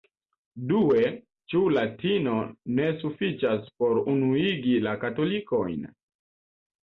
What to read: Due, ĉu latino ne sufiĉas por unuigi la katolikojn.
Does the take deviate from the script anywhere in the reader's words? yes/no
no